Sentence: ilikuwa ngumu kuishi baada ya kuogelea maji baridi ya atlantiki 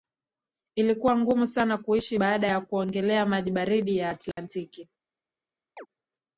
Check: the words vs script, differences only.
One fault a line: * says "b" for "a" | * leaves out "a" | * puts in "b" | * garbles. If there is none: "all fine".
* puts in "sana"